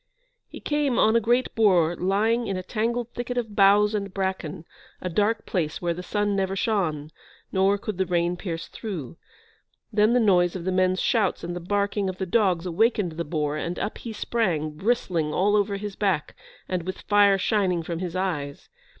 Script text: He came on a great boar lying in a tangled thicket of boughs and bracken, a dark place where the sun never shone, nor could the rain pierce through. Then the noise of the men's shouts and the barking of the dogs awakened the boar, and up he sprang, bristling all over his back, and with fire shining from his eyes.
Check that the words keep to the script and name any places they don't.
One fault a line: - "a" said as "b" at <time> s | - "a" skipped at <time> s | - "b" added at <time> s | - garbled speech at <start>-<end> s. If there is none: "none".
none